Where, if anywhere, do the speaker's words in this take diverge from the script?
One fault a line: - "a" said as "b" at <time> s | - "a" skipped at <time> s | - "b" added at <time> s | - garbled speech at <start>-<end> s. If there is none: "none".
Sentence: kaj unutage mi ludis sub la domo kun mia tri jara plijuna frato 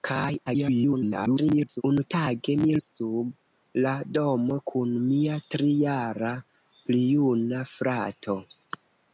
- garbled speech at 0.5-1.8 s
- "ludis" skipped at 2.8 s